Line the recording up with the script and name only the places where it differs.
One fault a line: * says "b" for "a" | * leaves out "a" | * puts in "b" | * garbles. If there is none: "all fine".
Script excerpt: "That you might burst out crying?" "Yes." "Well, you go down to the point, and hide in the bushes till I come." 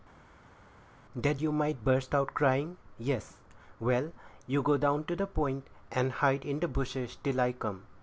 all fine